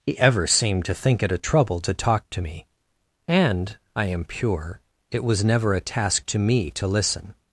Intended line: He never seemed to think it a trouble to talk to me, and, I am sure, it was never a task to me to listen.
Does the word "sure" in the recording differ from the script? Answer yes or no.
yes